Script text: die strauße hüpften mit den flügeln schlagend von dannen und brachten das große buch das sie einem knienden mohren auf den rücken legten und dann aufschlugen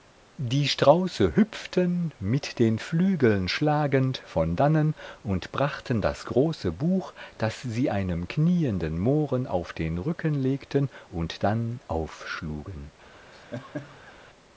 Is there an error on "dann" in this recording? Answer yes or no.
no